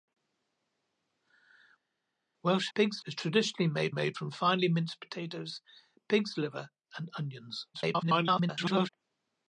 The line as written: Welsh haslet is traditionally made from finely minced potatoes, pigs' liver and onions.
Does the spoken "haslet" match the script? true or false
false